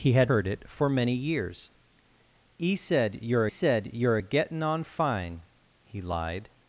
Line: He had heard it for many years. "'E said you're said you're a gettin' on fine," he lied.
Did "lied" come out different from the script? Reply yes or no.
no